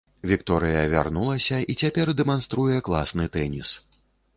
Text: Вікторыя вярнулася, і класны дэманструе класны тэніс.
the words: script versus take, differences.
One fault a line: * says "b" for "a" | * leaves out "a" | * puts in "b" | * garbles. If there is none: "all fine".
* says "цяпер" for "класны"